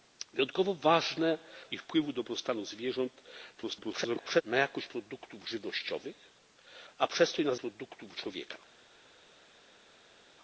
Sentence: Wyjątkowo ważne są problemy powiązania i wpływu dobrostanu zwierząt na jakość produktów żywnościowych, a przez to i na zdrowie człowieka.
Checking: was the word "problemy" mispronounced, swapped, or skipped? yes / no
yes